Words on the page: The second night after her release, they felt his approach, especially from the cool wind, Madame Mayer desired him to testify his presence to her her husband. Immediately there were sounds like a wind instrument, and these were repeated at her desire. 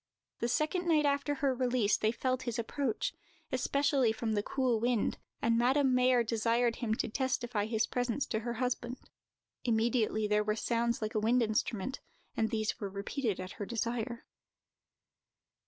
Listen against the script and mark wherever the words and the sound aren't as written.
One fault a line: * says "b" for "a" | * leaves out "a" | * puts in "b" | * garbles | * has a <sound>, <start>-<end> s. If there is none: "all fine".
* puts in "and"
* leaves out "her"